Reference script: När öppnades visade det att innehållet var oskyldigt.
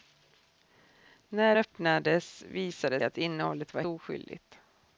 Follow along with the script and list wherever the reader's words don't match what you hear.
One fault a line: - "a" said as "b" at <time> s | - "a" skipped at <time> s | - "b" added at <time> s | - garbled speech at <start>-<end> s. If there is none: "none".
none